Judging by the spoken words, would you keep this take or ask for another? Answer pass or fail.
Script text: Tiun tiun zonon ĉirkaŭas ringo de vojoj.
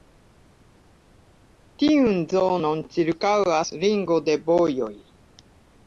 fail